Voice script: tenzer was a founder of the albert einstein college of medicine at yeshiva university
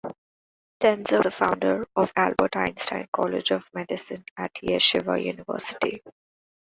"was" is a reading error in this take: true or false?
true